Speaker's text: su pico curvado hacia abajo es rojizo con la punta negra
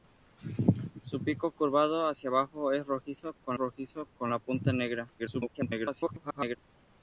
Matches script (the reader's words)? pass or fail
fail